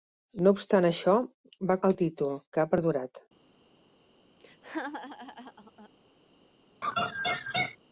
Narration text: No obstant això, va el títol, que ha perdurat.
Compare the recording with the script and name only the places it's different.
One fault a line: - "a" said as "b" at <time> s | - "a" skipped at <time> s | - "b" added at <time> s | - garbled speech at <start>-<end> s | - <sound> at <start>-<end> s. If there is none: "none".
- laugh at 4.4-5.9 s
- laugh at 6.8-7.8 s